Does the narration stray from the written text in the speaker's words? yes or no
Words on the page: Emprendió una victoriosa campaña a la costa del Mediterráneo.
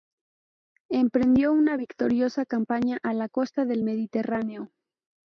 no